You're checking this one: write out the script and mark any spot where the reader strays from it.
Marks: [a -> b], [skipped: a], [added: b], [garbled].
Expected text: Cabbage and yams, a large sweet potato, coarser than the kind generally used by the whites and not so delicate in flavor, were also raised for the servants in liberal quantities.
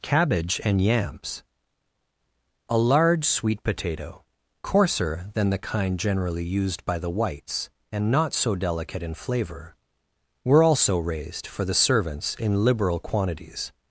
Cabbage and yams, a large sweet potato, coarser than the kind generally used by the whites and not so delicate in flavor, were also raised for the servants in liberal quantities.